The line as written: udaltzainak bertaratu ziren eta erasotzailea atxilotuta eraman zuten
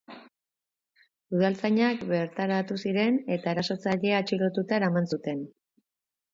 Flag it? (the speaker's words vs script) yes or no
no